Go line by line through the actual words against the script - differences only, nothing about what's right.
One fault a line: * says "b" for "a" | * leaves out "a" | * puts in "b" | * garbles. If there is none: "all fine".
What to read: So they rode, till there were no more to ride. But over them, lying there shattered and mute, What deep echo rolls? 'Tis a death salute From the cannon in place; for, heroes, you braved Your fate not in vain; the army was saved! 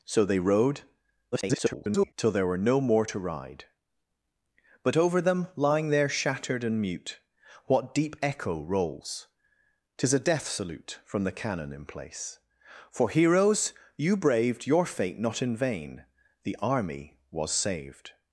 * garbles